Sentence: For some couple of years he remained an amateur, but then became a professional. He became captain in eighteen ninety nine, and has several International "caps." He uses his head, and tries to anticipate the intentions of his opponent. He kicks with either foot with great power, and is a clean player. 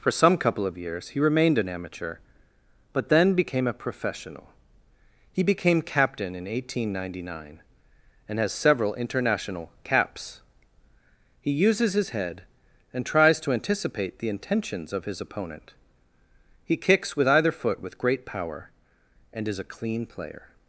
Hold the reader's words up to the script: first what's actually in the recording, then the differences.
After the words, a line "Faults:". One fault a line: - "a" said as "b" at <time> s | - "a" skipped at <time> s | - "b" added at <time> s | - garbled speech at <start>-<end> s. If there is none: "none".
For some couple of years he remained an amateur, but then became a professional. He became captain in eighteen ninety nine, and has several International "caps." He uses his head, and tries to anticipate the intentions of his opponent. He kicks with either foot with great power, and is a clean player.
Faults:
none